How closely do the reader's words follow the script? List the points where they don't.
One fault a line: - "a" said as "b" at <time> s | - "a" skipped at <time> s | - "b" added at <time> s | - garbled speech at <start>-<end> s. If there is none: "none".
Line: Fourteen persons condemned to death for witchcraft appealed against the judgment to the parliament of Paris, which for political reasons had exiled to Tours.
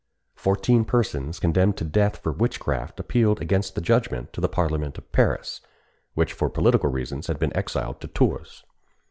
- "been" added at 7.4 s